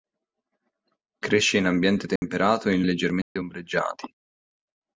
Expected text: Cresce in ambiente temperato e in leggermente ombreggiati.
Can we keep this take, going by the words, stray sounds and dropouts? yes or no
no